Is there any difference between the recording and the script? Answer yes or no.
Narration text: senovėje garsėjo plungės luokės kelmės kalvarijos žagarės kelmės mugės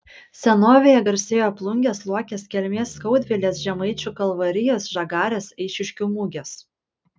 yes